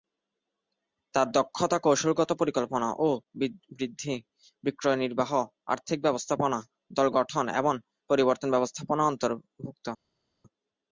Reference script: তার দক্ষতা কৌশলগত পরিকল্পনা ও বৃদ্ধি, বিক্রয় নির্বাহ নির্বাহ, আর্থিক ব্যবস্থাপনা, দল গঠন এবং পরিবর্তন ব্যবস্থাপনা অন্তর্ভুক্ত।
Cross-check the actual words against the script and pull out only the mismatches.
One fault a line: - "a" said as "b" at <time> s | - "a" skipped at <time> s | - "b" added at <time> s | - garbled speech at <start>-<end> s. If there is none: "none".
- "নির্বাহ" skipped at 5.3 s